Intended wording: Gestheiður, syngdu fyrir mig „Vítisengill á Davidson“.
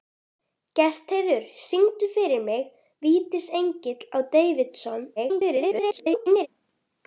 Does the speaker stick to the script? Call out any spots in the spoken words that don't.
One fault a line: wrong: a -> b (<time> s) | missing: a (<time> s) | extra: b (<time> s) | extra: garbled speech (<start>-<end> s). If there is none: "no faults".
extra: garbled speech (5.2-6.5 s)